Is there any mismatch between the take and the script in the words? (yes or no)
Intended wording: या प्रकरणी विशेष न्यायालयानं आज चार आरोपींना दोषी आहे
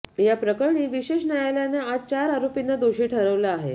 yes